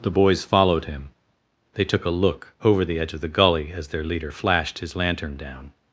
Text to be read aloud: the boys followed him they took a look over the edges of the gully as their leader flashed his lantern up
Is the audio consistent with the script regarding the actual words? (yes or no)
no